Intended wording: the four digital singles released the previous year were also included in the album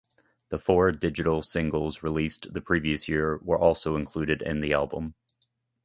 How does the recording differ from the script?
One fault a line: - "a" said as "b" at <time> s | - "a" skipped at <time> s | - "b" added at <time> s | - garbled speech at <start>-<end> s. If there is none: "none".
none